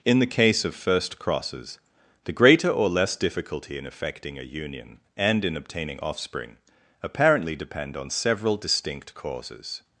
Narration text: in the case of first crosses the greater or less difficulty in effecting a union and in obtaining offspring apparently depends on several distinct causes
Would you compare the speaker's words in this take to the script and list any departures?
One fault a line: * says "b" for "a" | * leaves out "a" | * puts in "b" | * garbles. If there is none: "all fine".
* says "depend" for "depends"